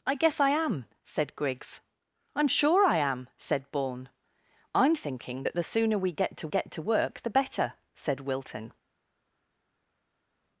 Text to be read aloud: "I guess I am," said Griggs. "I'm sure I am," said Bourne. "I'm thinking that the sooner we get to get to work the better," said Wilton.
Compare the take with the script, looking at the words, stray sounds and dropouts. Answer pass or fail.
pass